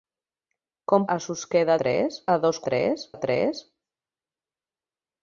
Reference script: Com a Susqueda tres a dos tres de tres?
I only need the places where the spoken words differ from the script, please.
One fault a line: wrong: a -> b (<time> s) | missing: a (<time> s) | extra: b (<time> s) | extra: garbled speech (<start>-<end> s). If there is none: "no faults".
no faults